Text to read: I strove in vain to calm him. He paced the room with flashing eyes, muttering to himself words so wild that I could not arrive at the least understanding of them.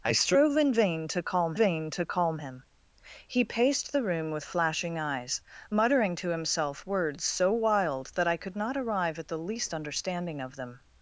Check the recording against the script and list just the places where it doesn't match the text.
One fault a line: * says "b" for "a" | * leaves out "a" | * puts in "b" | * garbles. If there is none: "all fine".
* puts in "vain to calm"